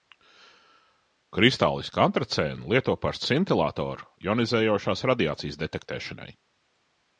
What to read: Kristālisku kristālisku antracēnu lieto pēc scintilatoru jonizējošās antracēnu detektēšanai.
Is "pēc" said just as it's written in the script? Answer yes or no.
no